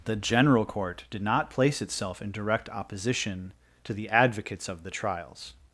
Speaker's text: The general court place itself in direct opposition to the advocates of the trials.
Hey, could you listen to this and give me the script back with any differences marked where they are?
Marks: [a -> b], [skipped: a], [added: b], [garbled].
The general court [added: did not] place itself in direct opposition to the advocates of the trials.